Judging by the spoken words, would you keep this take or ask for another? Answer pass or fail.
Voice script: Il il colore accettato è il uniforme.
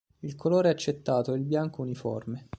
fail